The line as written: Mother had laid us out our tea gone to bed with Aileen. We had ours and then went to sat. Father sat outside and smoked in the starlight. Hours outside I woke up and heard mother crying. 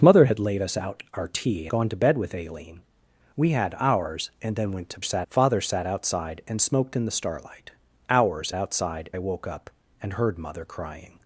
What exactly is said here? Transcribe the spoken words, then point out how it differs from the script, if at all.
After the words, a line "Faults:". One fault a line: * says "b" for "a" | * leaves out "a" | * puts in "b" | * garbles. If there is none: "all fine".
Mother had laid us out our tea gone to bed with Aileen. We had ours and then went to sat. Father sat outside and smoked in the starlight. Hours outside I woke up and heard mother crying.
Faults:
all fine